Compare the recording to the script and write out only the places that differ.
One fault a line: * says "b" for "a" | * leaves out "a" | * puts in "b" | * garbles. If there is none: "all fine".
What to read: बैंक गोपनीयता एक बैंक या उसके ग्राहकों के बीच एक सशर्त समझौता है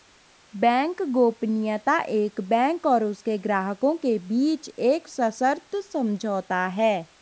* says "और" for "या"